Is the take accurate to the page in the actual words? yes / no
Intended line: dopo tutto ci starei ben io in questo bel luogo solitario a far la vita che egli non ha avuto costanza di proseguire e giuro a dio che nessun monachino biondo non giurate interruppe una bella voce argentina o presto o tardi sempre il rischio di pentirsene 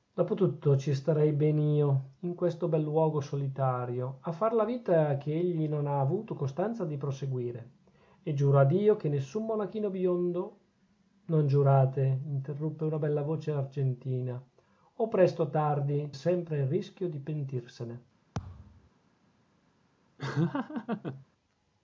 yes